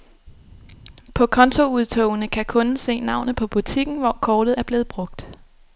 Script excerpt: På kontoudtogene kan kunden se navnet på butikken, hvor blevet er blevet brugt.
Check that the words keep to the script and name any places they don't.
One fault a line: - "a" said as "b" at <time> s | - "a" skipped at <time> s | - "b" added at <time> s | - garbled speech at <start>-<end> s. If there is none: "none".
- "blevet" said as "kortet" at 4.2 s